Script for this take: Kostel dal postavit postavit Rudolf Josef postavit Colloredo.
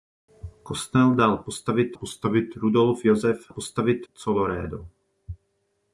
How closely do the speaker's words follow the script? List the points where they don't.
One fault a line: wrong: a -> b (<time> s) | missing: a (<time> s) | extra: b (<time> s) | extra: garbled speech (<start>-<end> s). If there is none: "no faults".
no faults